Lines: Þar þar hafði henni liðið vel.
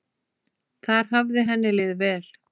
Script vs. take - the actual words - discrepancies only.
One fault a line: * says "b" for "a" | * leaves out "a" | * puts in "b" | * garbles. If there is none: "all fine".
* leaves out "þar"